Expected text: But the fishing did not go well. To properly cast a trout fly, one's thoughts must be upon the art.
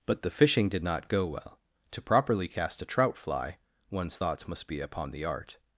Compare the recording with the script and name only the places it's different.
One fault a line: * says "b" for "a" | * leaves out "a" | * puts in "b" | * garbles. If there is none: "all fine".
all fine